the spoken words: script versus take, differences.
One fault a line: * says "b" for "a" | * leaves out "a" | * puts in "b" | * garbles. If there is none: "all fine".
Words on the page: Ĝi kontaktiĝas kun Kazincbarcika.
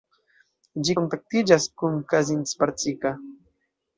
all fine